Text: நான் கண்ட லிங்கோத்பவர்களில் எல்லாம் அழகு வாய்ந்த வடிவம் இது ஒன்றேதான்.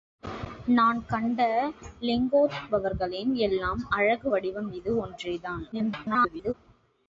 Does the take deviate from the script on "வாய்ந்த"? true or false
true